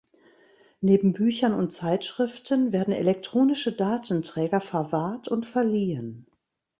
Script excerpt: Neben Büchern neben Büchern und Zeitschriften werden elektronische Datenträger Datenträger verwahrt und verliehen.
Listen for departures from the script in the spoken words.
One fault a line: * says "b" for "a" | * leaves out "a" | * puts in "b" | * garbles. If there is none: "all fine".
* leaves out "neben Büchern"
* leaves out "Datenträger"